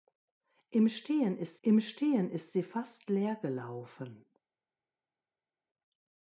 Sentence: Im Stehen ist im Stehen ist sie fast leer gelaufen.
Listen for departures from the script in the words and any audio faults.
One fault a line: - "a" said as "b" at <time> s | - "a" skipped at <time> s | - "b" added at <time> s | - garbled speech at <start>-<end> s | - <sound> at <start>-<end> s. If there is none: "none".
none